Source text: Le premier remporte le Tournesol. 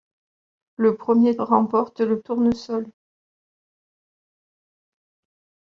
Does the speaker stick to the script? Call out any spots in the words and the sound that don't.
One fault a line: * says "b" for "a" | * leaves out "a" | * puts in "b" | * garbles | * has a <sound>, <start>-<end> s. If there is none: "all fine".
all fine